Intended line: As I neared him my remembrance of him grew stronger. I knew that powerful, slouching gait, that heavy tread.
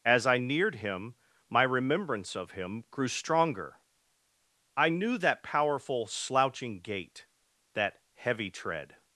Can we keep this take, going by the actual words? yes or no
yes